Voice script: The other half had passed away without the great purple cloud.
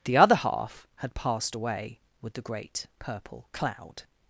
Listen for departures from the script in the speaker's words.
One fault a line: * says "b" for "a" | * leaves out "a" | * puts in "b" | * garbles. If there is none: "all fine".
* says "with" for "without"